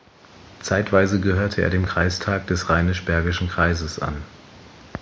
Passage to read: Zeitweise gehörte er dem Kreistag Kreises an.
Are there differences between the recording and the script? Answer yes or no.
yes